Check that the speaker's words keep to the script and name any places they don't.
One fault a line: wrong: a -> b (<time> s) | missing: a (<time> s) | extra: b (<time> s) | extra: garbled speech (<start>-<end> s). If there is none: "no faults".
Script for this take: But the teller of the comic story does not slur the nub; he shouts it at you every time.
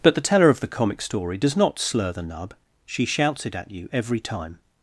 wrong: he -> she (2.8 s)